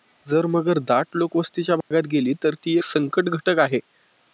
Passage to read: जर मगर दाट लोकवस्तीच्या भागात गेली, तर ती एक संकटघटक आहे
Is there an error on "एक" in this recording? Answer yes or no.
yes